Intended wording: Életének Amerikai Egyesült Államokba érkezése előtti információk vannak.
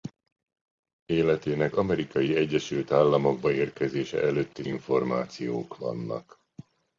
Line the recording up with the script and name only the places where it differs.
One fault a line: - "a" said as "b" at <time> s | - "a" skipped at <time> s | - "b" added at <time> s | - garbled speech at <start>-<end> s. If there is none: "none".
none